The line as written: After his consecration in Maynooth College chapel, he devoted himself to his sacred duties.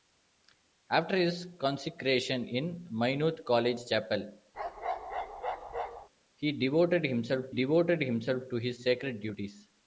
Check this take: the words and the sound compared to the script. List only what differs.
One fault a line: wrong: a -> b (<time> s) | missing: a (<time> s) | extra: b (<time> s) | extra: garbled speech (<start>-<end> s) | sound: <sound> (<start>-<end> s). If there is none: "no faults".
sound: bark (4.5-6.1 s)
extra: devoted himself (7.5 s)